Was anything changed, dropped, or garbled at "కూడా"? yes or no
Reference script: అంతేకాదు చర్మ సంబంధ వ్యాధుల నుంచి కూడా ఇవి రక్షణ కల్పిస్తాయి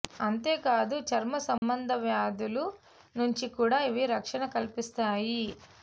no